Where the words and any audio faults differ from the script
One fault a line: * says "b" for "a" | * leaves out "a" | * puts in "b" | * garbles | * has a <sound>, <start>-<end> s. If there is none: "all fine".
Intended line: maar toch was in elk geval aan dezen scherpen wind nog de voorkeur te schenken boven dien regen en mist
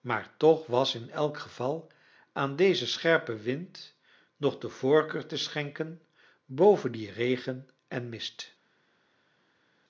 all fine